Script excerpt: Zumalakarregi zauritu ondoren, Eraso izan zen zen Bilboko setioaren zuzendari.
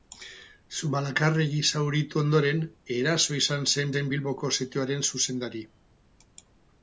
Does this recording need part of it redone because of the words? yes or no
no